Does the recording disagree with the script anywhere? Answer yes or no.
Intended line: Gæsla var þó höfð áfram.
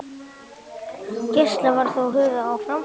no